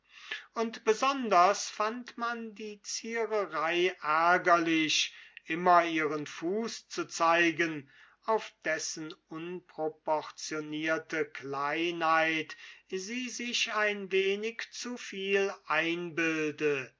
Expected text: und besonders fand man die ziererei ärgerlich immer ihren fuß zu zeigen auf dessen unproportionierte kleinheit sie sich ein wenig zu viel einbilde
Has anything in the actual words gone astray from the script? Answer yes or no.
no